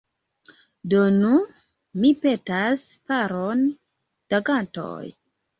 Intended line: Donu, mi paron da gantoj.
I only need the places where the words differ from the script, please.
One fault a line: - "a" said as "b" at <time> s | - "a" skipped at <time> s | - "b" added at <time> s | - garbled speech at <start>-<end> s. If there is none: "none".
- "petas" added at 2.2 s